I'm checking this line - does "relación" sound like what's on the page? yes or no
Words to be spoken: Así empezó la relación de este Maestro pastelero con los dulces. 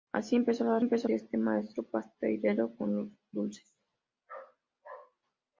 no